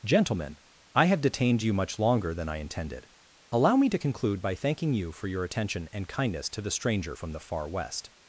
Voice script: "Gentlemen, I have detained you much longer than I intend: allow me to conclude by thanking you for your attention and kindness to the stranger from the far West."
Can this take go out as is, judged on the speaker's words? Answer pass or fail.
fail